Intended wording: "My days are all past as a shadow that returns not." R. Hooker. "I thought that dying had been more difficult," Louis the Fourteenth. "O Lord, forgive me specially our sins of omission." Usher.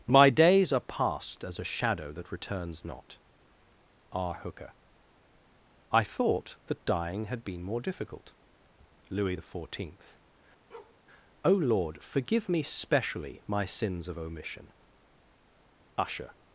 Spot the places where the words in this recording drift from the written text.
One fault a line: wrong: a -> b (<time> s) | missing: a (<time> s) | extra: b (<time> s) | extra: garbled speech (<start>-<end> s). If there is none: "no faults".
missing: all (0.8 s)
wrong: our -> my (13.5 s)